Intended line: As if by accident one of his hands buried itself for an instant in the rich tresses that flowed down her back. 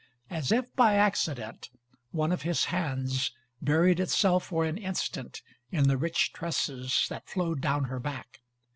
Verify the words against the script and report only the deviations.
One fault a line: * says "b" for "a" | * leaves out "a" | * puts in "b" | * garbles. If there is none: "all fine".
all fine